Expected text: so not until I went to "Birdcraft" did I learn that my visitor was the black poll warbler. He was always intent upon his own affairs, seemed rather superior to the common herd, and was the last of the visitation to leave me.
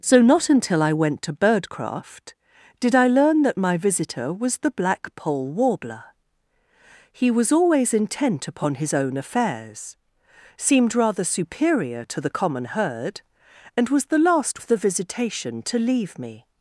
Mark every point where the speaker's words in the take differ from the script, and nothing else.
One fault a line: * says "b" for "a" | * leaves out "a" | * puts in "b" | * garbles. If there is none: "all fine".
all fine